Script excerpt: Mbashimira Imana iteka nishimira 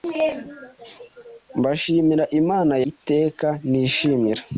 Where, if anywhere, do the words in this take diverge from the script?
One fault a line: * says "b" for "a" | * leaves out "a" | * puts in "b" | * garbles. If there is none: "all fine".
all fine